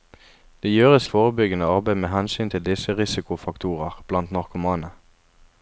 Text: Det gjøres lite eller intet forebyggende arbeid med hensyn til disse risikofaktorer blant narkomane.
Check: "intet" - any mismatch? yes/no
yes